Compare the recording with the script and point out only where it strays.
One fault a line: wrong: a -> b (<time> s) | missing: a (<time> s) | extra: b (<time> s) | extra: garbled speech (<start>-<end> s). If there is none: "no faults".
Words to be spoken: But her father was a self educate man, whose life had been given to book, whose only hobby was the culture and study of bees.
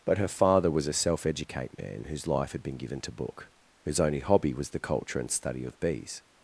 no faults